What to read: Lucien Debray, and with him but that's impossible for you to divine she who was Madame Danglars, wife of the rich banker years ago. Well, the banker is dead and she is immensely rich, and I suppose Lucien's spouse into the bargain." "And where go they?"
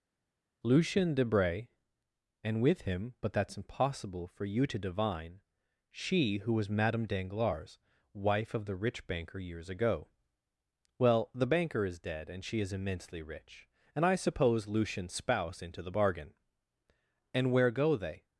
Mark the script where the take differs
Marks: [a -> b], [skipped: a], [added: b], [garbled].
Lucien Debray, and with him but that's impossible for you to divine she who was Madame Danglars, wife of the rich banker years ago. Well, the banker is dead and she is immensely rich, and I suppose Lucien's spouse into the bargain." "And where go they?"